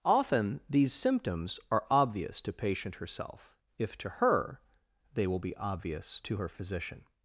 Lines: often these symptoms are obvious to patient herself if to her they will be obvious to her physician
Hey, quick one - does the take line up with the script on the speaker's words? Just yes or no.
yes